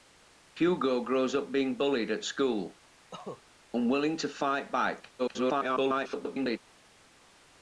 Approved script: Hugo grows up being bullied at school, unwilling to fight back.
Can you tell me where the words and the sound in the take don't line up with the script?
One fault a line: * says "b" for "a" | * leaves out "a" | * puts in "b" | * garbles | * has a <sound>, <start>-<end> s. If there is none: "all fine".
* has a cough, 3.1-3.4 s
* garbles